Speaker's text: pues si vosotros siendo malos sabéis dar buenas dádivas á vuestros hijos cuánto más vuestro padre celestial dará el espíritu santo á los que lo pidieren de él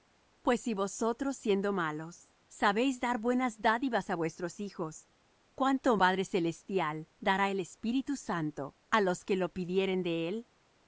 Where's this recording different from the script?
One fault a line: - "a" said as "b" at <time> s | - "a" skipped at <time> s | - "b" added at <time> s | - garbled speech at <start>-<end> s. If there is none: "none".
- "más vuestro" skipped at 6.0 s